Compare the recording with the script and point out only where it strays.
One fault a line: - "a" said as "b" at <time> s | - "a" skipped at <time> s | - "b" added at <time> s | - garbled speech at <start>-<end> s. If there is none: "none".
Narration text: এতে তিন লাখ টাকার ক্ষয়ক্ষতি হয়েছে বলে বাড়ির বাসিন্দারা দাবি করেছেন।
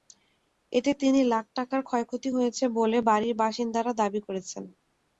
none